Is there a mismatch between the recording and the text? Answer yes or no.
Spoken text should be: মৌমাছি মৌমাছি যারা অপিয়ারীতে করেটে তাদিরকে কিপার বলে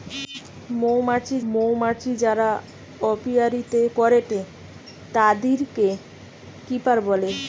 no